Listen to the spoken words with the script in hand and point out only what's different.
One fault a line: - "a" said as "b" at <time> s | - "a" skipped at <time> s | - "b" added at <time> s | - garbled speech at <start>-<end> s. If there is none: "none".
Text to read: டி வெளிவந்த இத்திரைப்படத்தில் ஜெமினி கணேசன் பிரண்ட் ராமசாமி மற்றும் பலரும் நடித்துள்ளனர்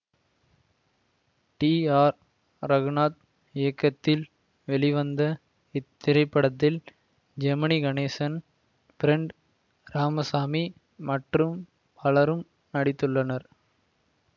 - "ஆர் ரகுநாத் இயக்கத்தில்" added at 2.0 s